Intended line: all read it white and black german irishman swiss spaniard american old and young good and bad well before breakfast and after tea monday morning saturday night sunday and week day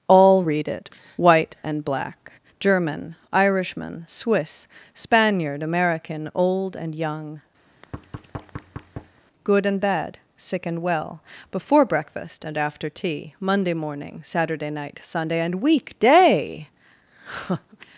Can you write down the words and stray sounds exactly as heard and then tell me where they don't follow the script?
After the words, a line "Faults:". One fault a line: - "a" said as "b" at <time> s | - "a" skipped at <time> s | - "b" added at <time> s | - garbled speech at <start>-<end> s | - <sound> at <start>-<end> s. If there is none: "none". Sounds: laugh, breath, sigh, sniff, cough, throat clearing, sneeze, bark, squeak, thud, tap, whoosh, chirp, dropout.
all read it white and black german irishman swiss spaniard american old and young good and bad sick and well before breakfast and after tea monday morning saturday night sunday and week day
Faults:
- thud at 7.7-9.2 s
- "sick and" added at 10.4 s